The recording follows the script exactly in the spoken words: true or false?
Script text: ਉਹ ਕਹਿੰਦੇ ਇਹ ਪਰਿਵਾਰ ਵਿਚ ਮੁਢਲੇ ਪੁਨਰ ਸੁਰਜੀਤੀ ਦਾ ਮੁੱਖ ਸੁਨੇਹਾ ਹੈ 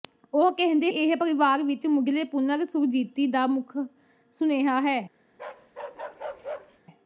true